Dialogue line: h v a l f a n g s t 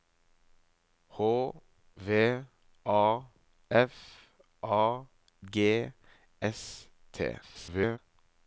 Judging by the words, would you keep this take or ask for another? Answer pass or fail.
fail